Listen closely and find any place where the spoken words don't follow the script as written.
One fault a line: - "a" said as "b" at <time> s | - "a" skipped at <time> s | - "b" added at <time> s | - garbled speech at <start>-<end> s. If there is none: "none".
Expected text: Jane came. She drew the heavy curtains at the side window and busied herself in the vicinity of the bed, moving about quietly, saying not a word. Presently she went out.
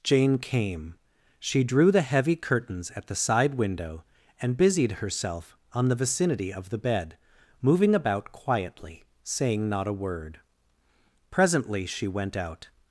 - "in" said as "on" at 5.7 s